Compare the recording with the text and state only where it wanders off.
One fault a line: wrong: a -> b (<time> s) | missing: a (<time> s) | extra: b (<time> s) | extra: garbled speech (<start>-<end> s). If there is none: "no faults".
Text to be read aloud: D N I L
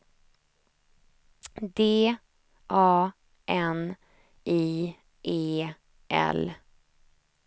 extra: A (2.7 s)
extra: E (5.2 s)